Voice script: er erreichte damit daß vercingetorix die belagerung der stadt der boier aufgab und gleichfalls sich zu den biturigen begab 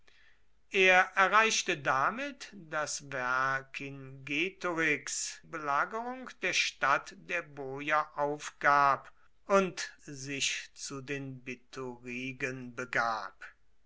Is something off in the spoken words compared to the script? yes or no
yes